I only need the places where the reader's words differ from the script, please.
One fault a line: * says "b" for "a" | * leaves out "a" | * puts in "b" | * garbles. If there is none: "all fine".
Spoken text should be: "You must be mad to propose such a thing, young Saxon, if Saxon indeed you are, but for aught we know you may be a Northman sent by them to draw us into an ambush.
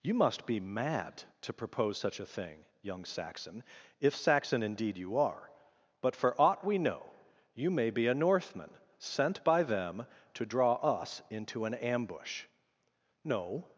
* puts in "No"